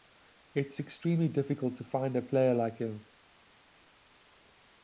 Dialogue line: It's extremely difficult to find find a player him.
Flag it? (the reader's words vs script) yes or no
yes